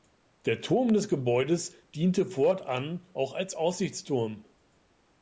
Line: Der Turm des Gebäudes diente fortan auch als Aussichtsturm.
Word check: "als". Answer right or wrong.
right